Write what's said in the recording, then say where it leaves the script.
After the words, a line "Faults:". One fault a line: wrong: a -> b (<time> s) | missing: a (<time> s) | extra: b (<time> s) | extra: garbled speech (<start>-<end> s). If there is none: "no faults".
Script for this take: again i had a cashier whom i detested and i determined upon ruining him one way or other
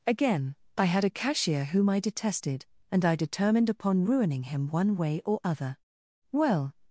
again i had a cashier whom i detested and i determined upon ruining him one way or other well
Faults:
extra: well (6.3 s)